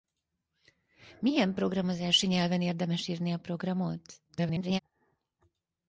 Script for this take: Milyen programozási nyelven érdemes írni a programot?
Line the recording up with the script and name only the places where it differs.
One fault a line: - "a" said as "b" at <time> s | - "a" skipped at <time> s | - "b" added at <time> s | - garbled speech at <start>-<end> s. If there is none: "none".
- garbled speech at 4.3-4.8 s